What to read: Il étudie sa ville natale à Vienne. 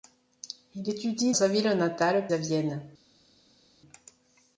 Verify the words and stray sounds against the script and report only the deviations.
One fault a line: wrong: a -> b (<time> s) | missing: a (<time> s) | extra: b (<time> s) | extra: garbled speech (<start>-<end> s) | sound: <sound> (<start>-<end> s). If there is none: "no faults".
no faults